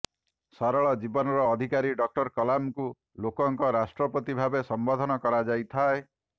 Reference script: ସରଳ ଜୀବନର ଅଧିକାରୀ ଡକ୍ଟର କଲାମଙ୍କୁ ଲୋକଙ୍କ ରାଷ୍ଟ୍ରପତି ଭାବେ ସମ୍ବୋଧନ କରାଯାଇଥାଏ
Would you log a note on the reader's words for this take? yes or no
no